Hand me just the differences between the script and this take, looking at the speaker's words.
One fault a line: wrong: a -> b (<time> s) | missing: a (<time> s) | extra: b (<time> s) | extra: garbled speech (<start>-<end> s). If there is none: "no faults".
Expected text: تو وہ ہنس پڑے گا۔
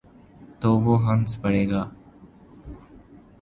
no faults